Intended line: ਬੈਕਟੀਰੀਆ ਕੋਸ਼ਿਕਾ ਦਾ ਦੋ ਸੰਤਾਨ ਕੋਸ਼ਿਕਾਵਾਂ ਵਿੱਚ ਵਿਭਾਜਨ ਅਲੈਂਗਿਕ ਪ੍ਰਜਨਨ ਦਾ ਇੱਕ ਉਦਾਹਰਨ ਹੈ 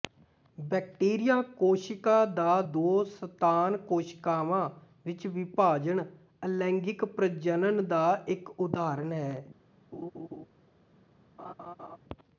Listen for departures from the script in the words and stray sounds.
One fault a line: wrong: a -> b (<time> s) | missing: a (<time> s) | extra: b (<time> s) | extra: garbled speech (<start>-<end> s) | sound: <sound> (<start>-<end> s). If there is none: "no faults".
sound: laugh (9.9-10.5 s)
sound: laugh (11.4-12.0 s)